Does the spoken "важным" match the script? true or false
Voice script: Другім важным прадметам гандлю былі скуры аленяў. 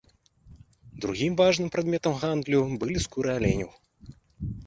true